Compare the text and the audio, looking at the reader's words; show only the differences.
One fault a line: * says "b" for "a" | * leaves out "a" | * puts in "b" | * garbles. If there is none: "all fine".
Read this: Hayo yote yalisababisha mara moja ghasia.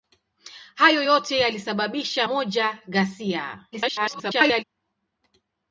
* leaves out "mara"
* garbles